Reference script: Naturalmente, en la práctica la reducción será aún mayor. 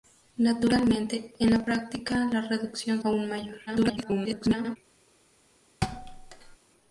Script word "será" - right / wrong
wrong